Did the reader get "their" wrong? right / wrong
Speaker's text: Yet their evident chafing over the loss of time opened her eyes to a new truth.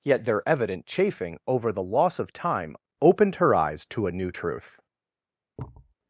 right